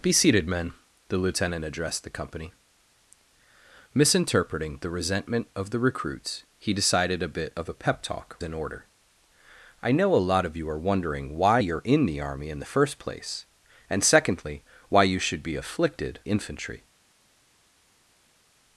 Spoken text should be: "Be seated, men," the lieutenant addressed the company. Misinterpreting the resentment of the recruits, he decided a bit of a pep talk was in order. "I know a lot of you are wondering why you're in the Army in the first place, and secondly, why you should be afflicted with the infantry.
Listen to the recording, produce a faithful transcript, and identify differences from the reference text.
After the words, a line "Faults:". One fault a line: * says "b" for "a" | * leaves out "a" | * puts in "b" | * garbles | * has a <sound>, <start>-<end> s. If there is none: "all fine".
"Be seated, men," the lieutenant addressed the company. Misinterpreting the resentment of the recruits, he decided a bit of a pep talk in order. "I know a lot of you are wondering why you're in the Army in the first place, and secondly, why you should be afflicted infantry.
Faults:
* leaves out "was"
* leaves out "with the"